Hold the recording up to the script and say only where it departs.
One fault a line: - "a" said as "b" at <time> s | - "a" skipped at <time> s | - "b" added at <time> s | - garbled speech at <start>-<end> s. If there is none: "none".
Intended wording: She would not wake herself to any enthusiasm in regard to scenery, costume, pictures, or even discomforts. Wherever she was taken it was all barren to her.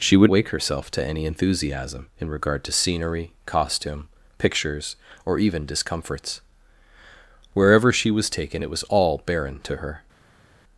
- "not" skipped at 0.3 s